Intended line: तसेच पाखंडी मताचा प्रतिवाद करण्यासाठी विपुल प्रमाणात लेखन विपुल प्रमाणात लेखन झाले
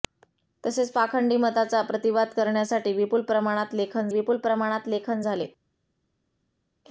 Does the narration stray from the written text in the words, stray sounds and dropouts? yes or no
no